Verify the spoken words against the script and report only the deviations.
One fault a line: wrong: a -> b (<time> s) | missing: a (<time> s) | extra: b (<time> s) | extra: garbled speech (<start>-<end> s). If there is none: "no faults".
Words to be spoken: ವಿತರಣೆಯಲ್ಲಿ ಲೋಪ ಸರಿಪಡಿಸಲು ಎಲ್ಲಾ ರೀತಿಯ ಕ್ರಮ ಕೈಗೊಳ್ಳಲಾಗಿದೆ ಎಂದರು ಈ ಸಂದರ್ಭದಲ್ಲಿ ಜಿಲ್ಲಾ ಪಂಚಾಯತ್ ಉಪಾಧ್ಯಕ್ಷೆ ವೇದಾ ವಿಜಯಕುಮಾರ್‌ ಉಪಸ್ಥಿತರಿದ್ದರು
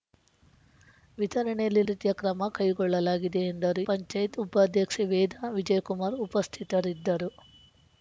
missing: ಲೋಪ ಸರಿಪಡಿಸಲು ಎಲ್ಲಾ (1.8 s)
missing: ಈ ಸಂದರ್ಭದಲ್ಲಿ ಜಿಲ್ಲಾ (3.8 s)